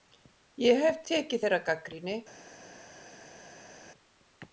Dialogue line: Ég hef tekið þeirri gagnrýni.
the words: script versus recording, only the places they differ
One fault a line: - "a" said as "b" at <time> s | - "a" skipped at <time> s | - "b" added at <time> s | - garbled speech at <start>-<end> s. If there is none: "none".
none